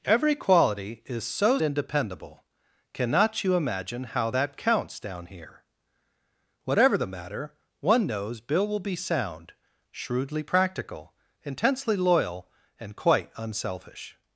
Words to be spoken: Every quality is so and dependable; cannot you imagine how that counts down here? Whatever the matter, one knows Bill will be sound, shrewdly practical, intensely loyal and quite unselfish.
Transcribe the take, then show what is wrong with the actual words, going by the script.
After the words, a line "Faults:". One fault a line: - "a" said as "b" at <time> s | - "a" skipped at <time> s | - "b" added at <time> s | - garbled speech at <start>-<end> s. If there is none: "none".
Every quality is so and dependable; cannot you imagine how that counts down here? Whatever the matter, one knows Bill will be sound, shrewdly practical, intensely loyal and quite unselfish.
Faults:
none